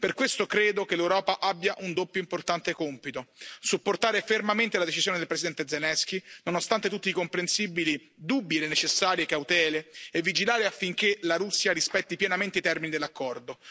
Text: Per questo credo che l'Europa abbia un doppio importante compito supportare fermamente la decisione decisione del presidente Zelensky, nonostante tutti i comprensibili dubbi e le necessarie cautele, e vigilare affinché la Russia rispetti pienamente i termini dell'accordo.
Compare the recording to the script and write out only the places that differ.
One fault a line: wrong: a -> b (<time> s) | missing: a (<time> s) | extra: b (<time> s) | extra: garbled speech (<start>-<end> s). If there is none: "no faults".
missing: decisione (5.2 s)